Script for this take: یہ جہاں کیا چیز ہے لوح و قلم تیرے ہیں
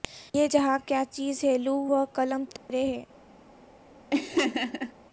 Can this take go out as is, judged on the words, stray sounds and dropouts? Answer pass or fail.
fail